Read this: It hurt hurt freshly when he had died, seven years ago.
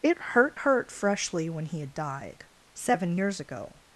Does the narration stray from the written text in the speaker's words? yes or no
no